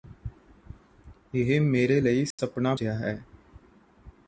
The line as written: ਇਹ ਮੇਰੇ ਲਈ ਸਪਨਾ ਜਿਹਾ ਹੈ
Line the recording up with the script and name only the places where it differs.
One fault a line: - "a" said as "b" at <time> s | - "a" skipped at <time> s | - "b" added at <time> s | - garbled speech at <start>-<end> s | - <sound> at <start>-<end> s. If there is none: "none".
- dropout at 2.3-2.4 s